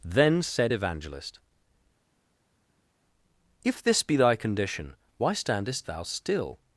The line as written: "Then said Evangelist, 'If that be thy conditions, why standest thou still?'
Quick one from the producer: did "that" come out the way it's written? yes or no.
no